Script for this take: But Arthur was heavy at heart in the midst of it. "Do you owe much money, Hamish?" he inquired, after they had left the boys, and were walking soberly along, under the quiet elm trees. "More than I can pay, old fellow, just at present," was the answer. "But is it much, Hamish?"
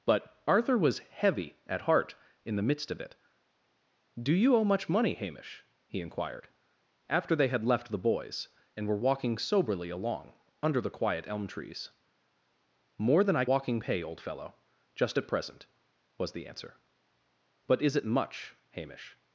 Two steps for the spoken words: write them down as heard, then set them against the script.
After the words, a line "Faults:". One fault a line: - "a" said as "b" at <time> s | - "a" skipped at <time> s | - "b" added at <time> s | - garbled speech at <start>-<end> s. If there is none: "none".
But Arthur was heavy at heart in the midst of it. "Do you owe much money, Hamish?" he inquired, after they had left the boys, and were walking soberly along, under the quiet elm trees. "More than I walking pay, old fellow, just at present," was the answer. "But is it much, Hamish?"
Faults:
- "can" said as "walking" at 13.5 s